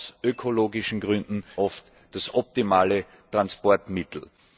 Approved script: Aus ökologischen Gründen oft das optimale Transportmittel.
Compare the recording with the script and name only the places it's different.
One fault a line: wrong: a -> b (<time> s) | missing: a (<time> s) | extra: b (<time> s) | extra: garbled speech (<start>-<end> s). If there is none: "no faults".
no faults